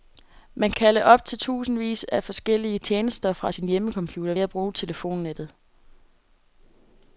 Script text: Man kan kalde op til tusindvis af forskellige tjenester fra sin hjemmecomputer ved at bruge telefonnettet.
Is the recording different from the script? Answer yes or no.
yes